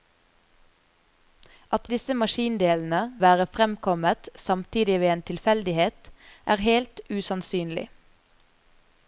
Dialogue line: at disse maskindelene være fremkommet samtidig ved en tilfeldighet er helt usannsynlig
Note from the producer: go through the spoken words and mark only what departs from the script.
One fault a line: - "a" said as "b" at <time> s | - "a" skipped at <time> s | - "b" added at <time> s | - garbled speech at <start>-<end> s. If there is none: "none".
none